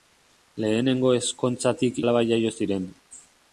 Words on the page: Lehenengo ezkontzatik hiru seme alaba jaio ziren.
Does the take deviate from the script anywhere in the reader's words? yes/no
yes